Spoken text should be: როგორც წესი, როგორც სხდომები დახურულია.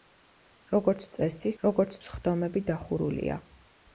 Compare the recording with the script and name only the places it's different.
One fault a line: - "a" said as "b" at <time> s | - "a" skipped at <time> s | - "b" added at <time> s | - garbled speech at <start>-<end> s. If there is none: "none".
none